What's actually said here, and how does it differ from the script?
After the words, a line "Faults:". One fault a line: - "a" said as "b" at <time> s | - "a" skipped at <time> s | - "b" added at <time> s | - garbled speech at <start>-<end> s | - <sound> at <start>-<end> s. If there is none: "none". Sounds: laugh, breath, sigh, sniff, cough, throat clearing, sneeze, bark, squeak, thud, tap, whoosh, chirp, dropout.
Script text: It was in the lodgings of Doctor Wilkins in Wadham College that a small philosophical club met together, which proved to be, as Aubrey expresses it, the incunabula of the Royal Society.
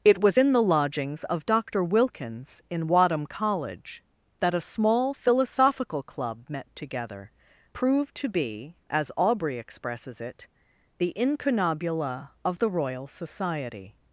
It was in the lodgings of Doctor Wilkins in Wadham College that a small philosophical club met together, proved to be, as Aubrey expresses it, the incunabula of the Royal Society.
Faults:
- "which" skipped at 7.3 s